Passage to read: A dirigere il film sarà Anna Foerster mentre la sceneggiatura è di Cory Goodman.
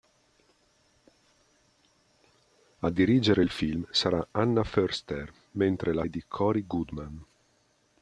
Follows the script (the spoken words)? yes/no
no